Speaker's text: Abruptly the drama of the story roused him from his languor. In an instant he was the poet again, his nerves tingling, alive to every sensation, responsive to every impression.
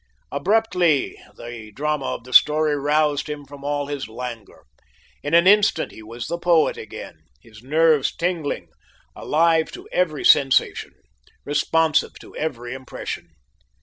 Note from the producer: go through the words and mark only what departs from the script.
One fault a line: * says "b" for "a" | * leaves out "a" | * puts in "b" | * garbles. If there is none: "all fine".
* puts in "all"